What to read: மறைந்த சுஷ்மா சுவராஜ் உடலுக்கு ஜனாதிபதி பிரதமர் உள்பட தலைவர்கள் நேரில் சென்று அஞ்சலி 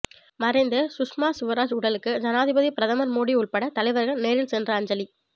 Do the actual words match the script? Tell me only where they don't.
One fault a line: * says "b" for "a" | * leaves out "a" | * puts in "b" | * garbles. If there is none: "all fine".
* puts in "மோடி"